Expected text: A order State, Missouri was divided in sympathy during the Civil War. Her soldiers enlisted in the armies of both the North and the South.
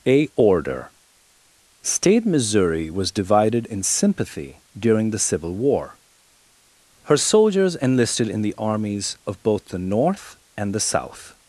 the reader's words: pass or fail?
pass